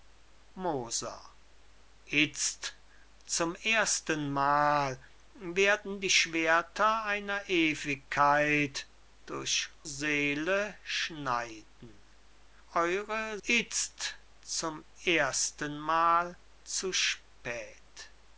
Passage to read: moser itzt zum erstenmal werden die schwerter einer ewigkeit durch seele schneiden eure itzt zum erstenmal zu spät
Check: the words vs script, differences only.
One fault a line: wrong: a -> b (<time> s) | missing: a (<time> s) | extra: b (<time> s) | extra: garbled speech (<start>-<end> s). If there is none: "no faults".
no faults